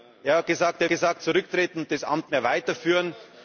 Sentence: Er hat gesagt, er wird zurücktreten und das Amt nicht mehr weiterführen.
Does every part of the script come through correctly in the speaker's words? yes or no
no